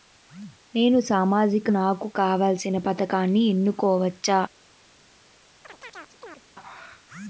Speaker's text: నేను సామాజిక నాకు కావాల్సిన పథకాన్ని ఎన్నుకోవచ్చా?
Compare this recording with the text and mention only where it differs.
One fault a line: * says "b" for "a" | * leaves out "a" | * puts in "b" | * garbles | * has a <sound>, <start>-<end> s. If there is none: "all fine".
* has a chirp, 5.6-6.4 s